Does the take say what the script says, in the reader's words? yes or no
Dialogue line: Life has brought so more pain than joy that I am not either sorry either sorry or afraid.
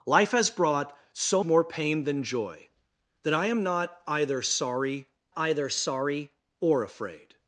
yes